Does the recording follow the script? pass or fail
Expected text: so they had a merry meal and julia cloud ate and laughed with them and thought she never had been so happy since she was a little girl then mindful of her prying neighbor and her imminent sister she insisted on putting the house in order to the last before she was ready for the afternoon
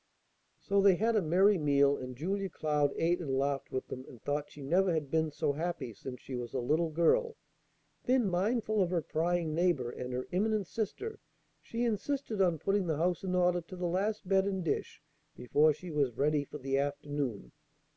fail